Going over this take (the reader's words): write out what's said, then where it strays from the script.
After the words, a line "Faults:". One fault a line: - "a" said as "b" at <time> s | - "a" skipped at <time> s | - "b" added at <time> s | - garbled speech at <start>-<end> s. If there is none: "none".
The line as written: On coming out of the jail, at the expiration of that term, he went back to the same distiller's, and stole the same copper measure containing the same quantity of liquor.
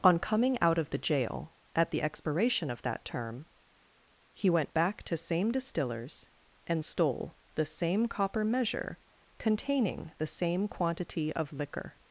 On coming out of the jail, at the expiration of that term, he went back to same distiller's, and stole the same copper measure containing the same quantity of liquor.
Faults:
- "the" skipped at 5.2 s